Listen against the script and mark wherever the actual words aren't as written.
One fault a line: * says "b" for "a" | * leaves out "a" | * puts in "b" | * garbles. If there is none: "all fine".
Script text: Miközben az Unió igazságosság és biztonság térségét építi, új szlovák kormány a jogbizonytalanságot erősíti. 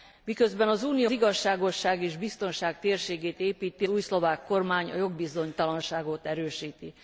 all fine